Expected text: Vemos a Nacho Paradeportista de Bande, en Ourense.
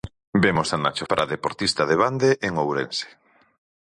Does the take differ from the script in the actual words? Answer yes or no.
no